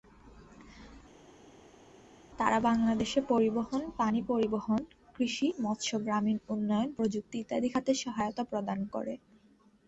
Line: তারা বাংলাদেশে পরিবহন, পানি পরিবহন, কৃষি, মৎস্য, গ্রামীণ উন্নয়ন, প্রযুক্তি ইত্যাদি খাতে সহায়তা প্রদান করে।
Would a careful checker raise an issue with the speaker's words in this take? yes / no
no